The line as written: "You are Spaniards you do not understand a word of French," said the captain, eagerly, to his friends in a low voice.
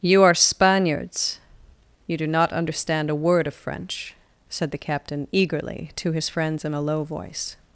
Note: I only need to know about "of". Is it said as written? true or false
true